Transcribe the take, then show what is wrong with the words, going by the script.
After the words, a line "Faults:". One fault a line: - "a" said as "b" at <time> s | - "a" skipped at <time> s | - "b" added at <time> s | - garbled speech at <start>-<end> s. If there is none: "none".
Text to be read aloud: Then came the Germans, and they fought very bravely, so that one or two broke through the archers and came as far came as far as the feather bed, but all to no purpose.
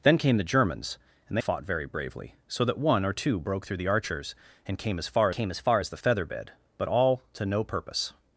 Then came the Germans, and they fought very bravely, so that one or two broke through the archers and came as far came as far as the feather bed, but all to no purpose.
Faults:
none